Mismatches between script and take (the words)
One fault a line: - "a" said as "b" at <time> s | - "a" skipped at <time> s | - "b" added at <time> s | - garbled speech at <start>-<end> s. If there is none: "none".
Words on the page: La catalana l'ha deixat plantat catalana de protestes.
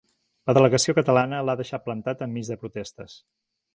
- "delegació" added at 0.6 s
- "catalana" said as "enmig" at 2.3 s